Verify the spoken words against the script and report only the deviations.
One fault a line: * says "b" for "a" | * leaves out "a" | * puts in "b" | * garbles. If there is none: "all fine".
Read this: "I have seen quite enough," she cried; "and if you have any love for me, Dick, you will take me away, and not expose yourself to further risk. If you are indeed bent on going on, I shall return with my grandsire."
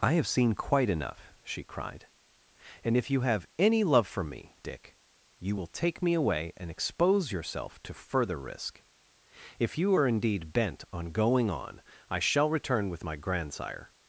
* leaves out "not"